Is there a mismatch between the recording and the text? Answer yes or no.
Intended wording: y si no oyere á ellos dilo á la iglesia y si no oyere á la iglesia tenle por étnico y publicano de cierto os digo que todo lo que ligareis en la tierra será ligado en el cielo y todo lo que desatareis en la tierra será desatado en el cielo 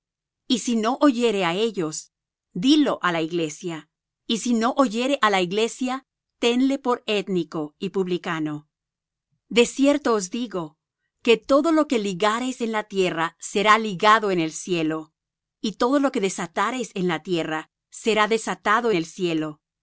yes